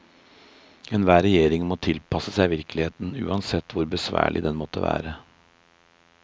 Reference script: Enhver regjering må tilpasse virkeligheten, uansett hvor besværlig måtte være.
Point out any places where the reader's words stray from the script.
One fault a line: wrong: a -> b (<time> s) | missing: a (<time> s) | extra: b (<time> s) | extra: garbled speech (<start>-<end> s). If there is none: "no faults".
extra: seg (2.4 s)
extra: den (4.5 s)